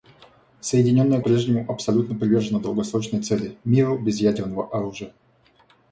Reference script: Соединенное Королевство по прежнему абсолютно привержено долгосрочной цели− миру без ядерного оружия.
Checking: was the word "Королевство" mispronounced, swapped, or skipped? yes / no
yes